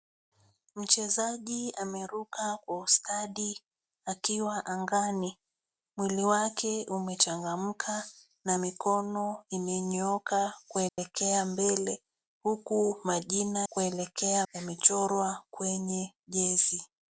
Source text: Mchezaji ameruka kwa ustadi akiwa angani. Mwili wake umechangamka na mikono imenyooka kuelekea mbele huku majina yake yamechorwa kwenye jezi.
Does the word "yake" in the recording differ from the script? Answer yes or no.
yes